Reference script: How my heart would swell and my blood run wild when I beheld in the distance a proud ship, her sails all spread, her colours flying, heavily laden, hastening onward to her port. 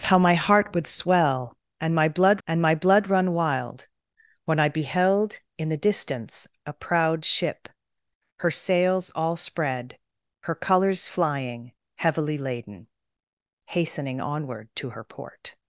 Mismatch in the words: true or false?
true